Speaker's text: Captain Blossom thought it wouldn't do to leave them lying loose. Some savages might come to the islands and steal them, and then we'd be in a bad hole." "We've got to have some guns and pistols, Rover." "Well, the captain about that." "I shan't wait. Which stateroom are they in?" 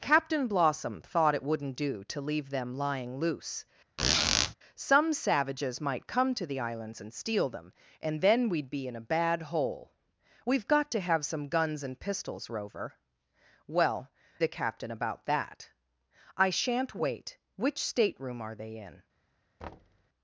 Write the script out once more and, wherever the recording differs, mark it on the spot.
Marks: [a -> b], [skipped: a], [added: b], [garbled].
Captain Blossom thought it wouldn't do to leave them lying loose. Some savages might come to the islands and steal them, and then we'd be in a bad hole." "We've got to have some guns and pistols, Rover." "Well, the captain about that." "I shan't wait. Which stateroom are they in?"